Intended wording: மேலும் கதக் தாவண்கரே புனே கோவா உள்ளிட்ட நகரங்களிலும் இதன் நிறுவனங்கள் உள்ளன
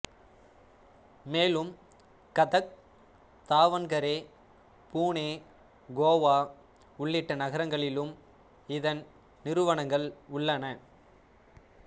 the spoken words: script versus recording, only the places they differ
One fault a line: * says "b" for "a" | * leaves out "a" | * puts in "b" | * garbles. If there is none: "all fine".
all fine